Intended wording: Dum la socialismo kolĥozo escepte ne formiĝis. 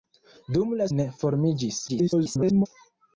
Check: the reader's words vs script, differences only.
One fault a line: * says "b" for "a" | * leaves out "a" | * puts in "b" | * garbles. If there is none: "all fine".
* leaves out "socialismo kolĥozo escepte"
* garbles